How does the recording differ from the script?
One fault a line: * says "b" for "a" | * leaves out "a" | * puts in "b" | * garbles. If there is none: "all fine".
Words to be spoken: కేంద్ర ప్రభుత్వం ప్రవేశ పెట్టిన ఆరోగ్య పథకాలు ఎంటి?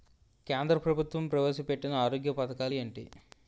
all fine